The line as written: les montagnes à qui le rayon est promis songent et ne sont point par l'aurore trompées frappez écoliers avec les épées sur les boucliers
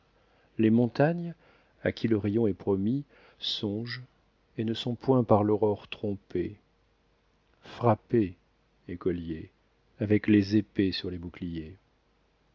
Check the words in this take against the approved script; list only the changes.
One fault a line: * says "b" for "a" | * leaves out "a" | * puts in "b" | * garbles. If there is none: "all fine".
all fine